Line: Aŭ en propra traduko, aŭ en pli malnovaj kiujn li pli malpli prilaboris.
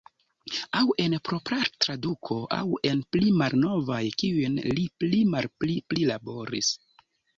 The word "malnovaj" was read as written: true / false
true